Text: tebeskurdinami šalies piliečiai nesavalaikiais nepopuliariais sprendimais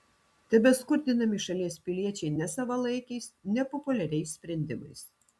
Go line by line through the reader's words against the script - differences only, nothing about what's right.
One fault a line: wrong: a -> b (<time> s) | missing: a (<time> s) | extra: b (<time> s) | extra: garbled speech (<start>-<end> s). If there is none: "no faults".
no faults